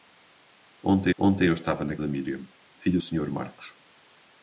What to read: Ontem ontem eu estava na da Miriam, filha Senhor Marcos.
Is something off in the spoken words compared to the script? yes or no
no